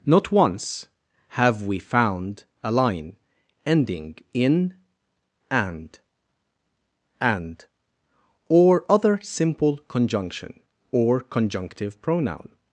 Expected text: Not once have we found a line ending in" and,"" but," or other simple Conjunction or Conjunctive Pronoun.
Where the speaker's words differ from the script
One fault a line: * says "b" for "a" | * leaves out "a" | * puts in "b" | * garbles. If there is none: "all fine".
* says "and" for "but"